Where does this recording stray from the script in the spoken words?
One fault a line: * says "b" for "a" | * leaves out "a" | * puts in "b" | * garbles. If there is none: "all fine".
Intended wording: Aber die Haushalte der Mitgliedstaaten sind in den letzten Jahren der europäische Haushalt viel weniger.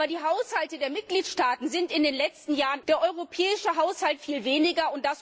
all fine